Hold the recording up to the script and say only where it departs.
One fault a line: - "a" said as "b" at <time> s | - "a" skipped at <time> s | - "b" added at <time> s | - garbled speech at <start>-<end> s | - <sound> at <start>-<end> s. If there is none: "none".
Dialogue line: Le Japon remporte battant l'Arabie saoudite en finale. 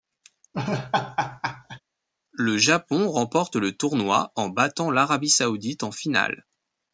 - laugh at 0.5-1.8 s
- "le tournoi en" added at 3.5 s